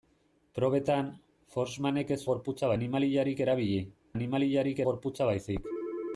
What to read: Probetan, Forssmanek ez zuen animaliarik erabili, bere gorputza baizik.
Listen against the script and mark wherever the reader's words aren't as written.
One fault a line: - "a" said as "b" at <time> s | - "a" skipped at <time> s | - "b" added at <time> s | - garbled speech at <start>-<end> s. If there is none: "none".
- "zuen" said as "gorputza" at 2.3 s
- "bere" said as "animaliarik" at 4.1 s